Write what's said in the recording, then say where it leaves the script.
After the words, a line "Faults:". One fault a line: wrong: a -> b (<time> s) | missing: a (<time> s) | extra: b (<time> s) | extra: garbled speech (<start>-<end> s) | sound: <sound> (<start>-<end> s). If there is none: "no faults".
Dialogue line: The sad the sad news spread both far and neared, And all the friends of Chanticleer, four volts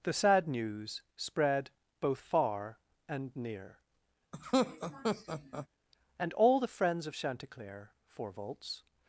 The sad news spread both far and near, And all the friends of Chanticleer, four volts
Faults:
missing: the sad (0.5 s)
wrong: neared -> near (3.3 s)
sound: laugh (4.3-5.7 s)